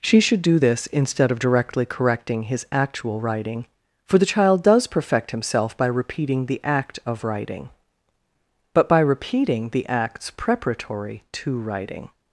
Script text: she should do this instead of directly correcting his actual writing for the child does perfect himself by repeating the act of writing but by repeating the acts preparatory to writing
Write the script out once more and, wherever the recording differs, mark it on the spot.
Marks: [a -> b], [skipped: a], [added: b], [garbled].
she should do this instead of directly correcting his actual writing for the child does perfect himself by repeating the act of writing but by repeating the acts preparatory to writing